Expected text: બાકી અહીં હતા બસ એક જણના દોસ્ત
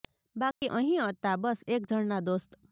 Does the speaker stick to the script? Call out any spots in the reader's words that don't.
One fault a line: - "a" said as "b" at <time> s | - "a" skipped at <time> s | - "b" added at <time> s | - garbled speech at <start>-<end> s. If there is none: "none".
none